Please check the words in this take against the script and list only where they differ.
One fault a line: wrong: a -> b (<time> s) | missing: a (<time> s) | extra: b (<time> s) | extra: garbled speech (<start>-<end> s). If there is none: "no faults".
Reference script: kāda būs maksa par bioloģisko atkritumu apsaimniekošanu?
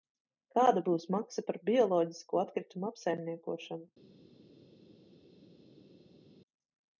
no faults